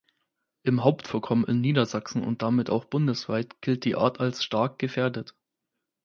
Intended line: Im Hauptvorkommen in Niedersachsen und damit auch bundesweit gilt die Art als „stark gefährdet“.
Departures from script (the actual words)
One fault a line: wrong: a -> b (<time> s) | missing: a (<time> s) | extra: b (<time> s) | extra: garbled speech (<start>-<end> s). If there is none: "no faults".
no faults